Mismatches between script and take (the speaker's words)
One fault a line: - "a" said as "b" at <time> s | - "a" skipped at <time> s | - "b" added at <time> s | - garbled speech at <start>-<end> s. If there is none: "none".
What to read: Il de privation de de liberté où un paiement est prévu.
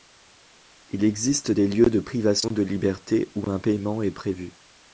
- "existe des lieux" added at 1.0 s
- "de" skipped at 2.6 s